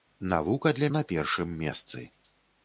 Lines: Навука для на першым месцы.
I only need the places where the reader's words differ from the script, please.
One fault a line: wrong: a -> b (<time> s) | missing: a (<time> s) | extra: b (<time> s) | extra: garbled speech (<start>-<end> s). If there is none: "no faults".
no faults